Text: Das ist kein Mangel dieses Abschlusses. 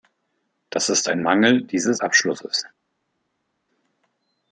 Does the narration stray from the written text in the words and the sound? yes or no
yes